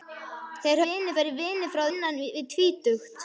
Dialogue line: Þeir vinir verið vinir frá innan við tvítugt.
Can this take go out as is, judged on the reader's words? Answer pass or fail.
pass